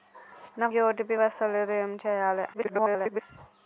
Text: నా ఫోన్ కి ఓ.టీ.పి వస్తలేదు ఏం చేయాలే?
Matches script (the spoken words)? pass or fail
fail